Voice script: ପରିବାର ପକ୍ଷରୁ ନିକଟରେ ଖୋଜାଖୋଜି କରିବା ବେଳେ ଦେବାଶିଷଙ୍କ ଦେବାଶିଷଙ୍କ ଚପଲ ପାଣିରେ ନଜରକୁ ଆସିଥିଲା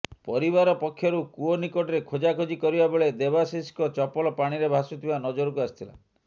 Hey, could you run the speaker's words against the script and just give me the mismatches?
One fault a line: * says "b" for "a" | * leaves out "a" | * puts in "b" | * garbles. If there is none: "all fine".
* puts in "କୂଅ"
* leaves out "ଦେବାଶିଷଙ୍କ"
* puts in "ଭାସୁଥିବା"